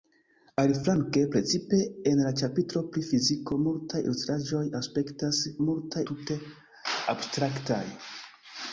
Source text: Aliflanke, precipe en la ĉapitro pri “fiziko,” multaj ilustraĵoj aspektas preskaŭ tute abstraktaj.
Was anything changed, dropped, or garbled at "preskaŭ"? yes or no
yes